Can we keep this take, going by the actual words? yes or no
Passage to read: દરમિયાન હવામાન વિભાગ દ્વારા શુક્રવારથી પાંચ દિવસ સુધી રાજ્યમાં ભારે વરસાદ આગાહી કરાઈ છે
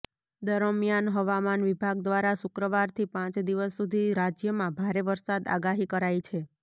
yes